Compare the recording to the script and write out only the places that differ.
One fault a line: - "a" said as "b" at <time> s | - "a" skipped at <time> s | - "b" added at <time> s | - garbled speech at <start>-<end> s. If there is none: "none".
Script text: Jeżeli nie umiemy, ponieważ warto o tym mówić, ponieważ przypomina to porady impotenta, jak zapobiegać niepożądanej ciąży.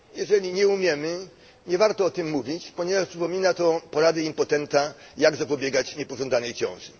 - "ponieważ" said as "nie" at 1.7 s